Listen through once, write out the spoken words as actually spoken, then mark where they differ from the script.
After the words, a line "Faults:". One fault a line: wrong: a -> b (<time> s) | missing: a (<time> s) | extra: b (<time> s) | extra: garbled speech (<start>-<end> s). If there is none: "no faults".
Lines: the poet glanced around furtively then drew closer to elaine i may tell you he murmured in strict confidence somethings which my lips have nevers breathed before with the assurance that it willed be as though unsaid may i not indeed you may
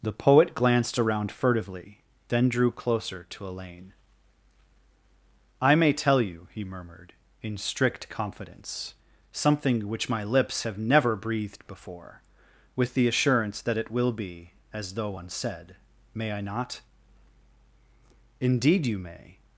the poet glanced around furtively then drew closer to elaine i may tell you he murmured in strict confidence something which my lips have never breathed before with the assurance that it will be as though unsaid may i not indeed you may
Faults:
wrong: somethings -> something (9.3 s)
wrong: nevers -> never (10.8 s)
wrong: willed -> will (13.9 s)